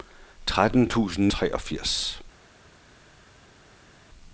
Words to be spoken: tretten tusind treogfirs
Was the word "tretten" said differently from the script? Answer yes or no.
no